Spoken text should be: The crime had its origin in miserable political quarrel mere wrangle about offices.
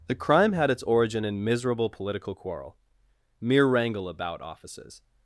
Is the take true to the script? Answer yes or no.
yes